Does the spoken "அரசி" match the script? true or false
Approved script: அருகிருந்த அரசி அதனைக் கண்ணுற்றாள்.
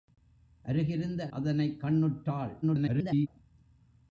false